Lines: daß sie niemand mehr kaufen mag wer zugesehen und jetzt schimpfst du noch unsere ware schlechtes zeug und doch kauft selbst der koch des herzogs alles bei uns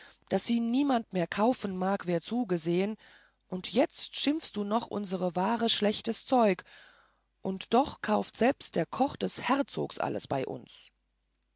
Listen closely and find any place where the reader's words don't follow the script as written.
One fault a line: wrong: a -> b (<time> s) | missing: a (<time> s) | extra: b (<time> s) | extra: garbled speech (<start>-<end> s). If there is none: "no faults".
no faults